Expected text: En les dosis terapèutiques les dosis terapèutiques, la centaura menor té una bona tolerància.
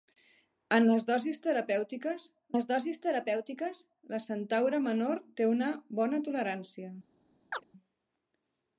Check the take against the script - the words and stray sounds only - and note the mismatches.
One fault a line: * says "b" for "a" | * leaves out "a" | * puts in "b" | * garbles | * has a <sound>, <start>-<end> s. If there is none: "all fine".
* has a chirp, 7.5-7.6 s